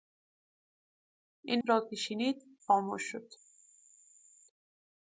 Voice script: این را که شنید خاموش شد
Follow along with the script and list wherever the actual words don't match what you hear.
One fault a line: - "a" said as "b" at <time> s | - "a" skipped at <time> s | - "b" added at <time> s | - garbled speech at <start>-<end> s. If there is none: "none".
none